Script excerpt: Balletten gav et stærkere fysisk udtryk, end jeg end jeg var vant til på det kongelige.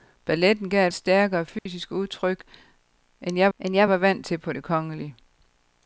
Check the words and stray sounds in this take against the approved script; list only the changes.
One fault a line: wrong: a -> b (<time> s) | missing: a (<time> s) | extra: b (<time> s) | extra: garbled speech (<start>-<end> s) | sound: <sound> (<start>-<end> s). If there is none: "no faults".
sound: dropout (1.6-1.7 s)